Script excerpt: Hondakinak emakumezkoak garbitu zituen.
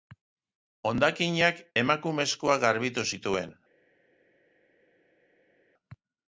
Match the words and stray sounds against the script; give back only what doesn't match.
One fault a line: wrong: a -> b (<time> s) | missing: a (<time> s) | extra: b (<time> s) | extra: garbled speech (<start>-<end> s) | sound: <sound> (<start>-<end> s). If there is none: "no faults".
no faults